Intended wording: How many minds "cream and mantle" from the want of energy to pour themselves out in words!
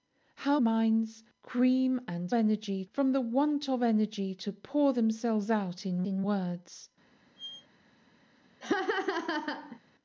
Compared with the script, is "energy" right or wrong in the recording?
right